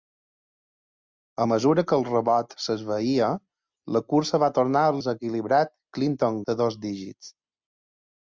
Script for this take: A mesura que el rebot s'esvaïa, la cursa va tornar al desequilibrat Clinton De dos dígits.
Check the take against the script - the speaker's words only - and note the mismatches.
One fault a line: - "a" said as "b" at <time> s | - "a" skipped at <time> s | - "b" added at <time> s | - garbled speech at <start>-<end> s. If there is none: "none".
none